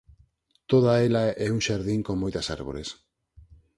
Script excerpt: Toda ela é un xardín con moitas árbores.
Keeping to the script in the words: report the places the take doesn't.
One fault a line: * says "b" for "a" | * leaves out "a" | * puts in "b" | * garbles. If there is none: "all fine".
all fine